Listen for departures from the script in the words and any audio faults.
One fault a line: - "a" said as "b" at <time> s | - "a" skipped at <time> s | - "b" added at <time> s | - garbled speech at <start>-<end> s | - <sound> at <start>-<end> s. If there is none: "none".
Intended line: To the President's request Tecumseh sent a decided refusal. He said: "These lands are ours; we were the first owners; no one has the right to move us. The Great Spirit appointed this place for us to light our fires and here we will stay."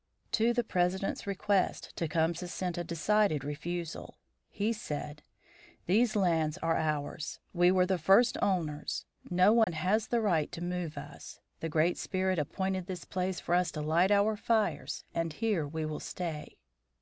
- dropout at 9.6-9.7 s